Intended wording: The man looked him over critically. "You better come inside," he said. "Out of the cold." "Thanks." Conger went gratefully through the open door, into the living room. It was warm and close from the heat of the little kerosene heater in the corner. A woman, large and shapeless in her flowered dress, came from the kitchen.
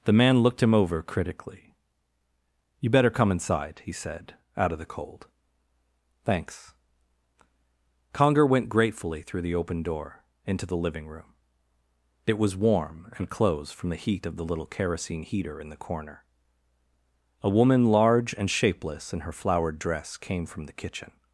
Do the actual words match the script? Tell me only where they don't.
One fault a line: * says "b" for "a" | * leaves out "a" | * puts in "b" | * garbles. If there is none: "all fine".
* says "closed" for "close"